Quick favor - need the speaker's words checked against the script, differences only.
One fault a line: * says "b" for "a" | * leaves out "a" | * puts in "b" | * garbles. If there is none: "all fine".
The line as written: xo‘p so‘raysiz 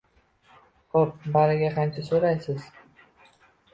* puts in "bariga qancha"